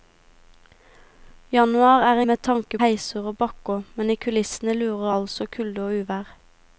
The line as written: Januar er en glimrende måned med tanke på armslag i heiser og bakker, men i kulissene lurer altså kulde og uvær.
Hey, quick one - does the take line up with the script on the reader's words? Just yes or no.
no